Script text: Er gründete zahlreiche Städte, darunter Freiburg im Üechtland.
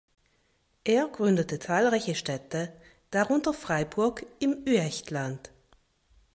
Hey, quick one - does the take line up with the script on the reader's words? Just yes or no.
yes